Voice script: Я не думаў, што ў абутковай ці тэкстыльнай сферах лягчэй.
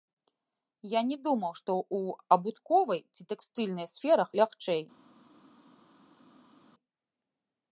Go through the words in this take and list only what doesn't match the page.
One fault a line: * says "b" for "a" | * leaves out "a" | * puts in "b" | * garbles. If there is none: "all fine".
all fine